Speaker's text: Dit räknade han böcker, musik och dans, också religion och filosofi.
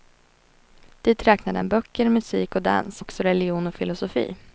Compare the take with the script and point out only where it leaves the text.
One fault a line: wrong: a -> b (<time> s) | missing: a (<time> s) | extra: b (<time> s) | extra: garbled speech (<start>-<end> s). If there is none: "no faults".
no faults